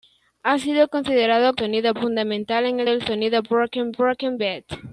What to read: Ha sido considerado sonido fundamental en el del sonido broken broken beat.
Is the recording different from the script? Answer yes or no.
no